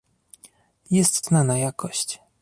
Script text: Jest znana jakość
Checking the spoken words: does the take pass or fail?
pass